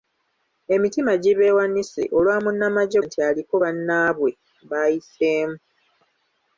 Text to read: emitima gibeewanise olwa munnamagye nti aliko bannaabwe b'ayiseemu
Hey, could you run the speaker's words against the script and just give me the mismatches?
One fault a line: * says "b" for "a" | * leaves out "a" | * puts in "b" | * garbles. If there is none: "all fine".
all fine